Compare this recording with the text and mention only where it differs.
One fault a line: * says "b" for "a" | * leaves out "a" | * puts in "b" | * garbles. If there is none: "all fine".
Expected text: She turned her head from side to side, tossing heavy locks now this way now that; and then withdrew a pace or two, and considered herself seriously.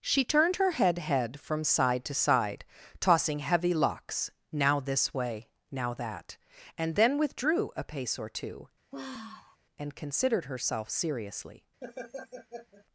* puts in "head"